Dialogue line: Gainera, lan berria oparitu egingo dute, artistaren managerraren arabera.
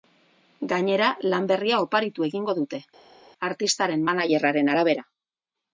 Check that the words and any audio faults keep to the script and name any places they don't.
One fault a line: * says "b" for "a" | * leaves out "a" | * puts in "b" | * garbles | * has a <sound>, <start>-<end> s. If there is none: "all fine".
all fine